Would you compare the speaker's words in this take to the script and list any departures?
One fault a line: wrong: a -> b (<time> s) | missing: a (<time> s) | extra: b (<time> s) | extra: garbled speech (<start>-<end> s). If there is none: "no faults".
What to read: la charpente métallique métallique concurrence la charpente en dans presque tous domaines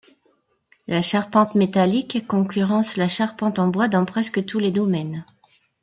missing: métallique (2.2 s)
extra: bois (3.7 s)
extra: les (4.6 s)